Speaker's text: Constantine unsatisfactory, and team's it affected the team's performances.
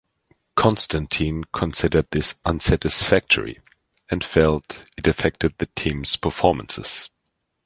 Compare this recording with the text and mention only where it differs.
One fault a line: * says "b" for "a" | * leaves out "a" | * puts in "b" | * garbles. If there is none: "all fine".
* puts in "considered this"
* says "felt" for "team's"